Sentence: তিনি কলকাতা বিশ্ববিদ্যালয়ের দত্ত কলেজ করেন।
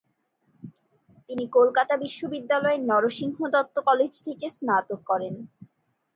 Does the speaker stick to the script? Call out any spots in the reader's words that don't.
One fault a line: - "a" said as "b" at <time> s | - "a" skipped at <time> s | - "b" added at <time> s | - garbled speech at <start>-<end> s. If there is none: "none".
- "নরসিংহ" added at 2.9 s
- "থেকে স্নাতক" added at 4.3 s